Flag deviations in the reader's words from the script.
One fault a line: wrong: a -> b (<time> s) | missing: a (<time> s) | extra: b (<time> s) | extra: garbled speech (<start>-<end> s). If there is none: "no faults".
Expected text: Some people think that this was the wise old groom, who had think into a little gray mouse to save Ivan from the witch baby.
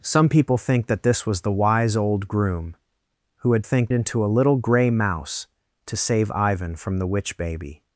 no faults